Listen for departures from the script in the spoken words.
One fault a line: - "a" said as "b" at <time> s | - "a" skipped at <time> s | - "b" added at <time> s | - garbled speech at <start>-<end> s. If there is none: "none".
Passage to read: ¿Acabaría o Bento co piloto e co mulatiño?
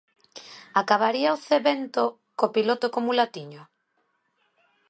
- "Zé" added at 1.4 s